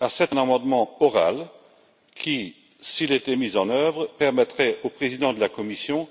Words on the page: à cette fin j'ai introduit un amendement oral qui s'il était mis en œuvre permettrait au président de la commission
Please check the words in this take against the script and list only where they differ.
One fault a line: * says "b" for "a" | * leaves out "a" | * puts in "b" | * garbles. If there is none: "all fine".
* leaves out "fin j'ai introduit"